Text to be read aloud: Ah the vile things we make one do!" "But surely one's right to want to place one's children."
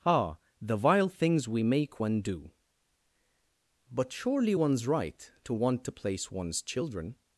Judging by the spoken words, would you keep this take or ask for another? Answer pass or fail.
pass